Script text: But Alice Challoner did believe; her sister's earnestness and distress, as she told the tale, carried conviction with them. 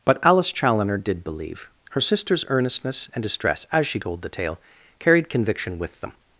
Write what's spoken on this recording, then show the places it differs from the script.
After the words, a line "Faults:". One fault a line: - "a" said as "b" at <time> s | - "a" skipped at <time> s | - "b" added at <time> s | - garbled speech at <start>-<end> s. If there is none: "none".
But Alice Challoner did believe; her sister's earnestness and distress, as she told the tale, carried conviction with them.
Faults:
none